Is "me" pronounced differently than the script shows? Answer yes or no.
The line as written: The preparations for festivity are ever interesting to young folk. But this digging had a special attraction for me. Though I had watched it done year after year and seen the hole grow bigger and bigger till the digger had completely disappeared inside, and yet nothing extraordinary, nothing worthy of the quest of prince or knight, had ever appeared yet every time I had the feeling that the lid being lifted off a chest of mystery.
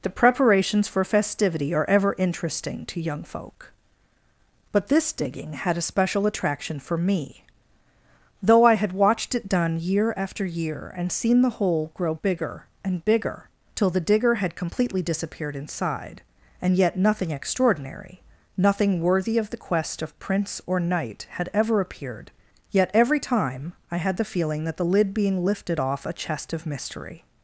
no